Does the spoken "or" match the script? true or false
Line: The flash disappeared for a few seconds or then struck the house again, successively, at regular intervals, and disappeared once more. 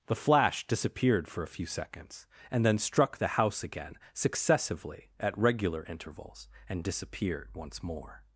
false